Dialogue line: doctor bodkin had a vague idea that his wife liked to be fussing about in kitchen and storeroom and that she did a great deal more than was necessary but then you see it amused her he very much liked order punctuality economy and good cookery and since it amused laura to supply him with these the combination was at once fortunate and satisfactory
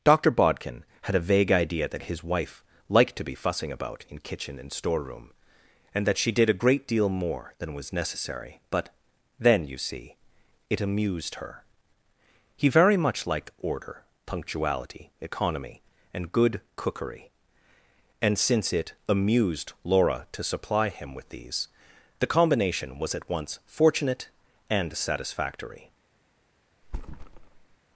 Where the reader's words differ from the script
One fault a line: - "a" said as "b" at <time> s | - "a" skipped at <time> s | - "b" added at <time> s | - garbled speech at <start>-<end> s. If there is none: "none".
none